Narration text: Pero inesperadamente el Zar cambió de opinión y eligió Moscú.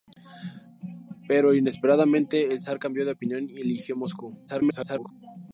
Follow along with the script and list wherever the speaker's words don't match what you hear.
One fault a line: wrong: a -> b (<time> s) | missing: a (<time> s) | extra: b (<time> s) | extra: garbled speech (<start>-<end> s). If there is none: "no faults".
extra: garbled speech (4.5-5.1 s)